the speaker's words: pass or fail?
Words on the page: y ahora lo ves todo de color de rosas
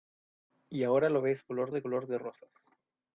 fail